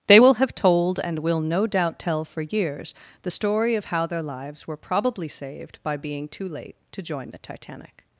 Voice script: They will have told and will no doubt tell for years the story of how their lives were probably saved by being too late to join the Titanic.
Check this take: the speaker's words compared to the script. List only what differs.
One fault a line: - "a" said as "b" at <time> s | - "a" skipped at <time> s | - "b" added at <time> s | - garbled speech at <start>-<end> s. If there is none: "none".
none